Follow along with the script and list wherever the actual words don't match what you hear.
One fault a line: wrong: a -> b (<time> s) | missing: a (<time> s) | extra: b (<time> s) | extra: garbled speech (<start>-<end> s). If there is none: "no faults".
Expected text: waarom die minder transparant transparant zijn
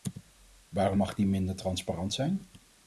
extra: mag (1.0 s)
missing: transparant (2.1 s)